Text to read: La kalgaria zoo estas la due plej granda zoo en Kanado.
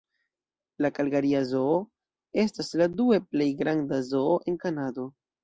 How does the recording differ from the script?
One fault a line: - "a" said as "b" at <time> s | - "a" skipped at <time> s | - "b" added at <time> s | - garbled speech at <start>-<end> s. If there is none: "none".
none